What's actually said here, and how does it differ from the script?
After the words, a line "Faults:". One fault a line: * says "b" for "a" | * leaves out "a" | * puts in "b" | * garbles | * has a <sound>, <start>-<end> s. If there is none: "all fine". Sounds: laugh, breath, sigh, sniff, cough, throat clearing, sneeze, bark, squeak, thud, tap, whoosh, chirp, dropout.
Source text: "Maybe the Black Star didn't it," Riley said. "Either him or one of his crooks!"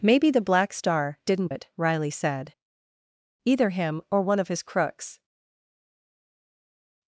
"Maybe the Black Star didn't it," Riley said. "Either him or one of his crooks!"
Faults:
all fine